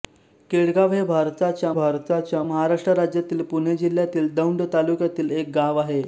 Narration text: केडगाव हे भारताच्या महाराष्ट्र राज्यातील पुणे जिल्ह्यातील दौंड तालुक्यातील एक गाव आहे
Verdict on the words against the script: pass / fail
fail